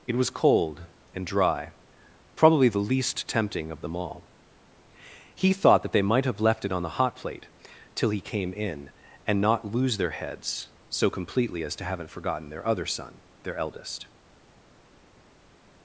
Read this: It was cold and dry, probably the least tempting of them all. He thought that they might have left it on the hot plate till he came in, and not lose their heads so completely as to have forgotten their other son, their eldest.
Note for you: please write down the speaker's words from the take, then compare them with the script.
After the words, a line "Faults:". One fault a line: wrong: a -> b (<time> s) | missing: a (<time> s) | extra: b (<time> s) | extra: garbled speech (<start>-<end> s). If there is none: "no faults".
It was cold and dry, probably the least tempting of them all. He thought that they might have left it on the hot plate till he came in, and not lose their heads so completely as to haven't forgotten their other son, their eldest.
Faults:
wrong: have -> haven't (11.8 s)